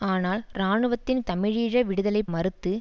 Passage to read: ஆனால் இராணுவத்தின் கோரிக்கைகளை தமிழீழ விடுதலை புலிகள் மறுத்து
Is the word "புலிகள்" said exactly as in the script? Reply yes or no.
no